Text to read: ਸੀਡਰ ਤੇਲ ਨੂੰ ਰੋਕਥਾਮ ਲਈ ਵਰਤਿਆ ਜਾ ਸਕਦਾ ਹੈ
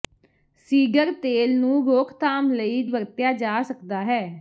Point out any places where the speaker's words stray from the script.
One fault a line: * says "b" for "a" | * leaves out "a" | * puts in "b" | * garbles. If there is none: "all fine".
all fine